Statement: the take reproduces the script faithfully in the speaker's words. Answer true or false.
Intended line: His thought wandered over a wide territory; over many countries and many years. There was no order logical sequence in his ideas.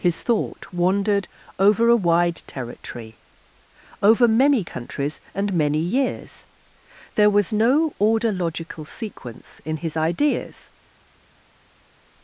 true